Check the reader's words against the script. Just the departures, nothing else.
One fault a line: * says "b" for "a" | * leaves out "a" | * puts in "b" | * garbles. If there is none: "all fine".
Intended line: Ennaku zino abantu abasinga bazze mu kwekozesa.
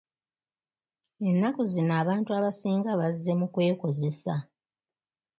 all fine